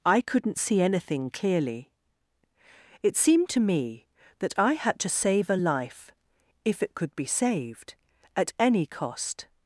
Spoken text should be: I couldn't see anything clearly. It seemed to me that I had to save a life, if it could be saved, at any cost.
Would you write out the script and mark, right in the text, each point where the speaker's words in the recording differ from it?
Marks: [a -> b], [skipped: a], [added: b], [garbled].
I couldn't see anything clearly. It seemed to me that I had to save a life, if it could be saved, at any cost.